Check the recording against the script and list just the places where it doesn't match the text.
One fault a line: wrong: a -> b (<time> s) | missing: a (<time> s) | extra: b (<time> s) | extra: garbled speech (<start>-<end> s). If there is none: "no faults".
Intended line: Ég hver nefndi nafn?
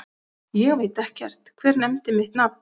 extra: veit ekkert (0.8 s)
extra: mitt (2.2 s)